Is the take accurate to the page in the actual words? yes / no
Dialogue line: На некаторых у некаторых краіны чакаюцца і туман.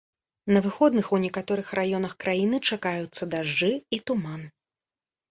no